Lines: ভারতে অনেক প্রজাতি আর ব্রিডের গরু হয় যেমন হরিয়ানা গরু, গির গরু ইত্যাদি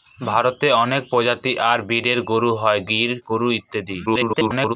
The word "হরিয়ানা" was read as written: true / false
false